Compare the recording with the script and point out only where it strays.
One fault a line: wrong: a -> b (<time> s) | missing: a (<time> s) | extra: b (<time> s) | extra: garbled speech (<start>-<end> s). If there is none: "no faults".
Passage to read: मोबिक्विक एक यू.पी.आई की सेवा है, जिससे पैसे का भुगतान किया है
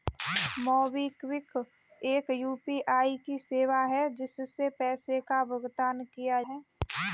no faults